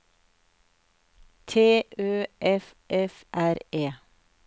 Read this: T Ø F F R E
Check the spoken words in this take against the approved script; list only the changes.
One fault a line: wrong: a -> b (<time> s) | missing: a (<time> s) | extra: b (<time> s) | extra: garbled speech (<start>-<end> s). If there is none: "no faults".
no faults